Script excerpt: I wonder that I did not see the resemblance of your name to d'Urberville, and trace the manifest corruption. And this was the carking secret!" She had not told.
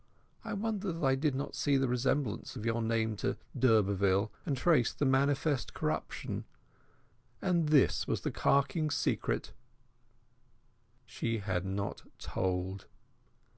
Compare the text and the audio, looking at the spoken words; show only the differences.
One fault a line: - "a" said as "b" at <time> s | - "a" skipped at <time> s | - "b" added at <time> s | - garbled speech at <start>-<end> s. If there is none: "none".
none